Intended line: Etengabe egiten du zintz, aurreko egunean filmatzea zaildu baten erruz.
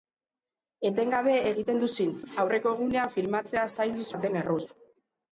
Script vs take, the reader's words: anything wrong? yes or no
no